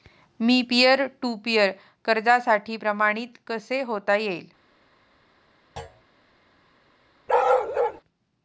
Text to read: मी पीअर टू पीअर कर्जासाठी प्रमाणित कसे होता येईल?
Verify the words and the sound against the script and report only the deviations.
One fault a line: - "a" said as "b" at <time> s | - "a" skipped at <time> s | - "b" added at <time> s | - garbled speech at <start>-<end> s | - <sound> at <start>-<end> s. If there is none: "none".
- thud at 5.8-6.0 s
- bark at 7.3-8.0 s